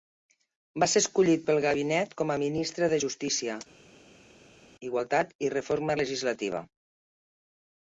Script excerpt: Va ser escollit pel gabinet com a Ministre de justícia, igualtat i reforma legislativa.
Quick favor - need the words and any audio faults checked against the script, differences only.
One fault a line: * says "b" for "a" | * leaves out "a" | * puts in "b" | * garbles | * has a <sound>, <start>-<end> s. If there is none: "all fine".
all fine